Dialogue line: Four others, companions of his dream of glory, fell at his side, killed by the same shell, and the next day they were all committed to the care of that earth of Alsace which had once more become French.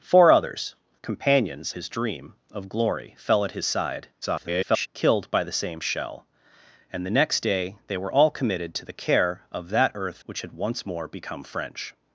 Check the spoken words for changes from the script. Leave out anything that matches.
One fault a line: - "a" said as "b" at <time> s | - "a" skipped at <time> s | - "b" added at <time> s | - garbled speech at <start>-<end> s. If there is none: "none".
- "of" skipped at 1.7 s
- garbled speech at 4.2-4.9 s
- "of Alsace" skipped at 10.2 s